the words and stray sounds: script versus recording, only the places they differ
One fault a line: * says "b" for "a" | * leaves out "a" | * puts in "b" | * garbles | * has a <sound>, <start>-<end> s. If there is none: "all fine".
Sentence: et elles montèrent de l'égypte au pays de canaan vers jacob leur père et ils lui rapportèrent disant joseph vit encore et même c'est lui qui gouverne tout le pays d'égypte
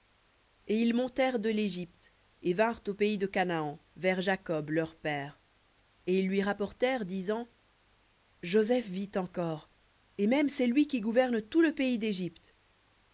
* says "ils" for "elles"
* puts in "et vinrent"